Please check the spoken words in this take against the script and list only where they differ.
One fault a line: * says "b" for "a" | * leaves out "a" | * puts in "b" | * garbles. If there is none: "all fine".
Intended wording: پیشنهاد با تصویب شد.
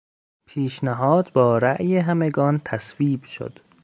* puts in "رای همگان"